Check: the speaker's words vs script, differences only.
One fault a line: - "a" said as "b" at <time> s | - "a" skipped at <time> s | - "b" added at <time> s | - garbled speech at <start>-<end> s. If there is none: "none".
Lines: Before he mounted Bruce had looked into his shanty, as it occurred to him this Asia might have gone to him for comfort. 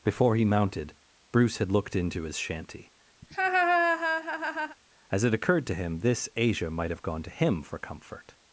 none